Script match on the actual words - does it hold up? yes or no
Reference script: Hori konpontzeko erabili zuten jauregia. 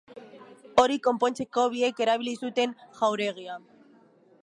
no